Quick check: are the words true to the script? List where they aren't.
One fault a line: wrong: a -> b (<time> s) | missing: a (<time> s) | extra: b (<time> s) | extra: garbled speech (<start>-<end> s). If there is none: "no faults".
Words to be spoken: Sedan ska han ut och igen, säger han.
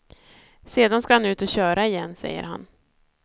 extra: köra (1.5 s)